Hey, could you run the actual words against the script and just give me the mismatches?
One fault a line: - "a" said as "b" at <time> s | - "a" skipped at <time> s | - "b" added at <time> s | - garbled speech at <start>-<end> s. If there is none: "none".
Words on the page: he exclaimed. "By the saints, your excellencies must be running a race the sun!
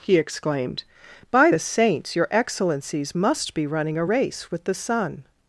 - "with" added at 4.5 s